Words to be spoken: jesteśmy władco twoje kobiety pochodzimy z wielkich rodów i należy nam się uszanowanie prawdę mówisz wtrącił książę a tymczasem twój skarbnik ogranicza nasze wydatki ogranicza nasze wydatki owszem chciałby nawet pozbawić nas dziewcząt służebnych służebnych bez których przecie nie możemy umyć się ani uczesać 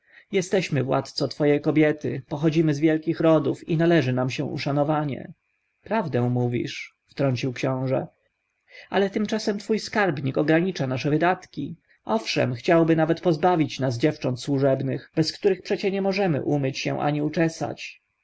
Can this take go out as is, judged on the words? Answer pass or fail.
fail